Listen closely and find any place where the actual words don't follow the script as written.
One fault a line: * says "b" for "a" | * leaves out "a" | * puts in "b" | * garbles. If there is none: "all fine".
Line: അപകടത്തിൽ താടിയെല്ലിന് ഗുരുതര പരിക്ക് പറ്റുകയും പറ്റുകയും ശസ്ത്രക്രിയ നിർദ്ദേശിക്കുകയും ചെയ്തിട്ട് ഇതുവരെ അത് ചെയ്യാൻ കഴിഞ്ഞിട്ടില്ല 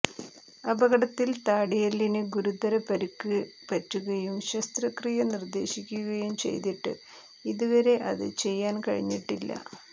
* leaves out "പറ്റുകയും"